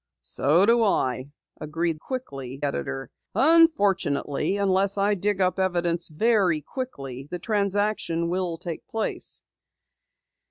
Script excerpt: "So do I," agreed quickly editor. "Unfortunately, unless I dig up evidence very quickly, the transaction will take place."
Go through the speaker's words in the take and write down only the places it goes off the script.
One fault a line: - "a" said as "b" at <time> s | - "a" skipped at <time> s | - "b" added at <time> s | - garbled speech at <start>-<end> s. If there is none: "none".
none